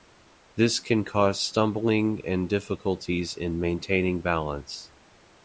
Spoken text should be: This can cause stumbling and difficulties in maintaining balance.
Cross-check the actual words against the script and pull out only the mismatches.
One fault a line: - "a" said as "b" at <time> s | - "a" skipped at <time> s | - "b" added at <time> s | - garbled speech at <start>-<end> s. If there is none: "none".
none